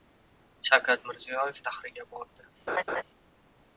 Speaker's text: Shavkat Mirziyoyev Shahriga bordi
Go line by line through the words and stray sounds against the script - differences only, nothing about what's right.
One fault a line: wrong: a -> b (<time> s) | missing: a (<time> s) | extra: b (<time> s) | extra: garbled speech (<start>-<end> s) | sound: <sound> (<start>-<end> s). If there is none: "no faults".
sound: laugh (2.7-3.0 s)